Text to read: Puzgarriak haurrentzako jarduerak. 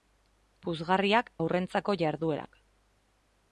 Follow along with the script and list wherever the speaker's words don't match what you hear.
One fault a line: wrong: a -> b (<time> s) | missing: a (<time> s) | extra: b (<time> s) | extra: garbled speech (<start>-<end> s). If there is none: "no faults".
no faults